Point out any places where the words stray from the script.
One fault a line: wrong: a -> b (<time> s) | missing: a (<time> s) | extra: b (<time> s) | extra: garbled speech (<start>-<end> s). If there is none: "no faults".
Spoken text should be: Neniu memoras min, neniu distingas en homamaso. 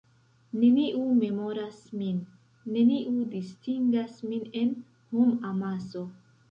extra: min (4.3 s)